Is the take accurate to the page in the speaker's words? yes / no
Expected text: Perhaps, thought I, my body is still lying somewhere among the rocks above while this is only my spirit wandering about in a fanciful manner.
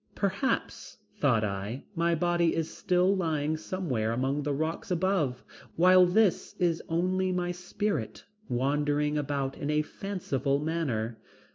yes